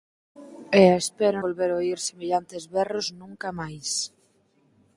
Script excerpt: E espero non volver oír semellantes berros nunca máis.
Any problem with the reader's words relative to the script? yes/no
yes